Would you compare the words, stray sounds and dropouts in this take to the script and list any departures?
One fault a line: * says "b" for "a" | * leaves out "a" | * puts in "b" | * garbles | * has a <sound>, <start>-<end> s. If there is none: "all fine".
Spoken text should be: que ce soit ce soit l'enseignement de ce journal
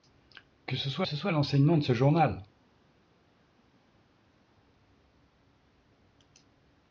all fine